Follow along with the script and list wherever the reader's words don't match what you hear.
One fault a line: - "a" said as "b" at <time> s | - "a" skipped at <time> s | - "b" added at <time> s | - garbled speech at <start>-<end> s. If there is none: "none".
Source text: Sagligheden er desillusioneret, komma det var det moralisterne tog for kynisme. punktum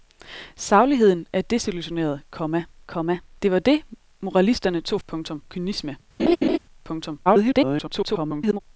- "komma" added at 2.9 s
- "for" said as "punktum" at 5.1 s
- garbled speech at 7.3-8.6 s